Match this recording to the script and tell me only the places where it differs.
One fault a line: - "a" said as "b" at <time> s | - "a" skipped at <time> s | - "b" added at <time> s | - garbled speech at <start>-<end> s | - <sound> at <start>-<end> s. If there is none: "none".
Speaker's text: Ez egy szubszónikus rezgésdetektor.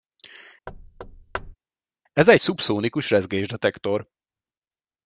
- thud at 0.7-1.6 s